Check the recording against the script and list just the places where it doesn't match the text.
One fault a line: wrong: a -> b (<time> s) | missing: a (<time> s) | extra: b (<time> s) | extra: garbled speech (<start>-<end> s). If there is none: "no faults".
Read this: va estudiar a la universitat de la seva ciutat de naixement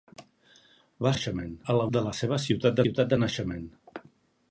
wrong: estudiar -> naixement (1.1 s)
missing: universitat (1.9 s)
extra: ciutat (2.8 s)